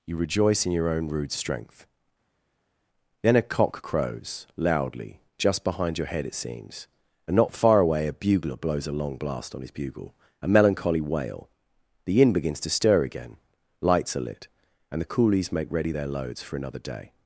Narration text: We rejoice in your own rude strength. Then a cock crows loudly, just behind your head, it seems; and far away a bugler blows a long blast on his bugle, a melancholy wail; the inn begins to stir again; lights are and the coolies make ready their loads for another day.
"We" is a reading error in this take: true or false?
true